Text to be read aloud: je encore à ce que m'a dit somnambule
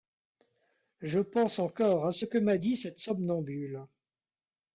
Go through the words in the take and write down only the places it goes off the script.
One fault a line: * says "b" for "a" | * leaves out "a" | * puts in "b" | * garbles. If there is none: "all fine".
* puts in "pense"
* puts in "cette"